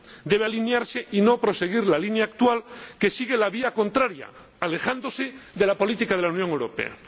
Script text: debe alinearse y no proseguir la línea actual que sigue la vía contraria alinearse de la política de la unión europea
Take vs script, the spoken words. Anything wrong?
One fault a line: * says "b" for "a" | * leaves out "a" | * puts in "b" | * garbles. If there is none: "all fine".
* says "alejándose" for "alinearse"